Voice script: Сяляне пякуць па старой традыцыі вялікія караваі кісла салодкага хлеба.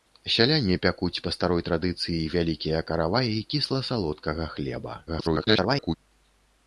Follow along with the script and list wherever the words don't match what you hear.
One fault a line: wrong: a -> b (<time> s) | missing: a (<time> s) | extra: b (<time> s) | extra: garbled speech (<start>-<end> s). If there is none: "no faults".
extra: garbled speech (5.1-6.0 s)